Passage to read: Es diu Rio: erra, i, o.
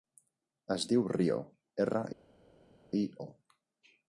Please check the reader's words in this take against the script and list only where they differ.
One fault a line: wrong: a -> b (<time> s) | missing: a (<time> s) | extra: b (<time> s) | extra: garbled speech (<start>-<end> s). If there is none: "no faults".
no faults